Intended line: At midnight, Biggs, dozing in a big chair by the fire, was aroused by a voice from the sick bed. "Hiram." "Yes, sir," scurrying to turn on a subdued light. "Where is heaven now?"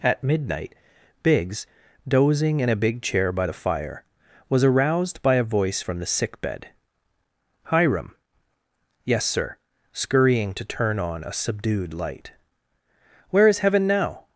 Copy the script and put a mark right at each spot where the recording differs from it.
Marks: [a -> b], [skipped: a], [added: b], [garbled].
At midnight, Biggs, dozing in a big chair by the fire, was aroused by a voice from the sick bed. "Hiram." "Yes, sir," scurrying to turn on a subdued light. "Where is heaven now?"